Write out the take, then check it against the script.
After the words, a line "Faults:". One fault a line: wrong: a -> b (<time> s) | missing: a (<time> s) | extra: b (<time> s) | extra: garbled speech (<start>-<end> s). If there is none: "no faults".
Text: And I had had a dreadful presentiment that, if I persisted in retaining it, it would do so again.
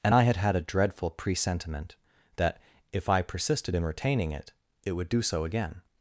And I had had a dreadful presentiment that, if I persisted in retaining it, it would do so again.
Faults:
no faults